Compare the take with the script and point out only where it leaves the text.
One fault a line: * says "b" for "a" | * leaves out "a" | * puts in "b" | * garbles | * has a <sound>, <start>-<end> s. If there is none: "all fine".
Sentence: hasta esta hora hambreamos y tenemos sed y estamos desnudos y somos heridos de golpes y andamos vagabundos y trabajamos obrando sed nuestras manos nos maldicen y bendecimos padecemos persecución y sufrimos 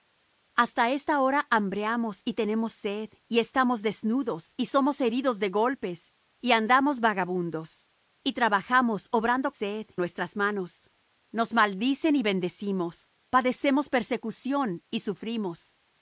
all fine